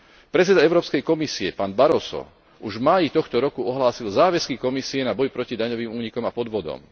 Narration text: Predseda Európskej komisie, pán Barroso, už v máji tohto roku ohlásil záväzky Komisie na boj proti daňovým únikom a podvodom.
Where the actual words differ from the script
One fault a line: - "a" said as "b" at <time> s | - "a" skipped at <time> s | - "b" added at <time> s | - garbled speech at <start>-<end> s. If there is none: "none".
none